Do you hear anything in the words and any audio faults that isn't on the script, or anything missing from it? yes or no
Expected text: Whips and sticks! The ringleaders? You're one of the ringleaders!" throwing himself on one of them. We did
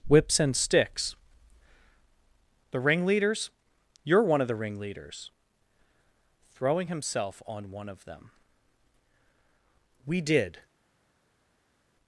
no